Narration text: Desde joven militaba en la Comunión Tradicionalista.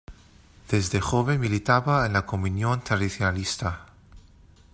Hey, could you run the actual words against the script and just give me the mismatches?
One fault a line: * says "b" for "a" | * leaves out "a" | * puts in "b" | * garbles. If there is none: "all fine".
all fine